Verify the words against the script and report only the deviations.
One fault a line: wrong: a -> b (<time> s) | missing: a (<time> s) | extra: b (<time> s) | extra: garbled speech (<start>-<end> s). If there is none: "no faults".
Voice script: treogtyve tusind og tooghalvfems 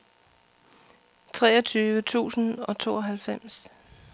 no faults